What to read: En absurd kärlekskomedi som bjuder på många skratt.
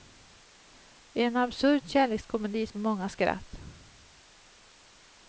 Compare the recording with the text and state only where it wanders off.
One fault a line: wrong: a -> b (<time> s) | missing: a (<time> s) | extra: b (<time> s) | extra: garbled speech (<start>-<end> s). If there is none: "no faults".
missing: som bjuder (2.7 s)